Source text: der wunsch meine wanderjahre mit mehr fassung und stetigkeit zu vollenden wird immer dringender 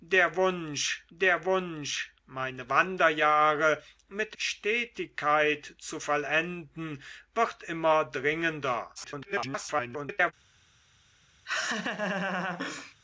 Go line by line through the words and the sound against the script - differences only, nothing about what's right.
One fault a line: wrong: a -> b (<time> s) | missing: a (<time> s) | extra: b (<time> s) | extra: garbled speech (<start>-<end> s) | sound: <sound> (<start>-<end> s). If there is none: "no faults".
extra: der wunsch (1.1 s)
missing: mehr fassung und (4.4 s)
extra: garbled speech (8.9-10.3 s)
sound: laugh (11.5-13.0 s)